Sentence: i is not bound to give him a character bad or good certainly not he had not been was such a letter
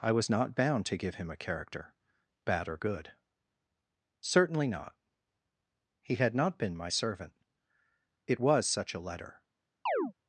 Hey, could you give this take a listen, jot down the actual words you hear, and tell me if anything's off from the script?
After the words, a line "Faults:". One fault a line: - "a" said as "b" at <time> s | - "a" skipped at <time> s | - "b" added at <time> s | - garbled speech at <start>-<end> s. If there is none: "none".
i was not bound to give him a character bad or good certainly not he had not been my servant it was such a letter
Faults:
- "is" said as "was" at 0.1 s
- "my servant it" added at 6.8 s